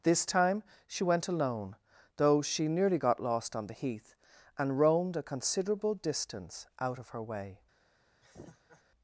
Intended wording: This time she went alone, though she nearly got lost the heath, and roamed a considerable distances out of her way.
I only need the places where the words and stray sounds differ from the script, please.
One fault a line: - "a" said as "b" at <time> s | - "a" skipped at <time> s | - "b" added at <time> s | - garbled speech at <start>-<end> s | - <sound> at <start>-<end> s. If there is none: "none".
- "on" added at 3.5 s
- "distances" said as "distance" at 5.9 s
- laugh at 8.2-8.8 s